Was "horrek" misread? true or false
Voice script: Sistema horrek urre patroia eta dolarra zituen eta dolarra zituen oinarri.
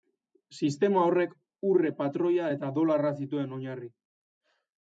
false